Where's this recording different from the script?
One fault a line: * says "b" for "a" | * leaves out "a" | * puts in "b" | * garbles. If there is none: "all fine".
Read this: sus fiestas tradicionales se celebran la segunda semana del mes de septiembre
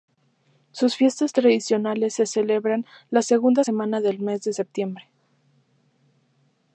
all fine